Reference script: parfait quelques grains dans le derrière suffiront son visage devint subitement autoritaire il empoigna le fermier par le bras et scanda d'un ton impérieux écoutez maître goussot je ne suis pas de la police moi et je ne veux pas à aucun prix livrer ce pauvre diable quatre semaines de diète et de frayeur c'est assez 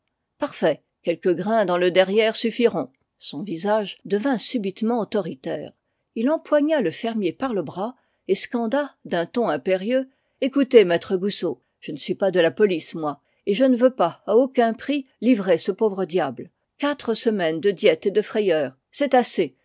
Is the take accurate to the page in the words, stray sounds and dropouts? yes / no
yes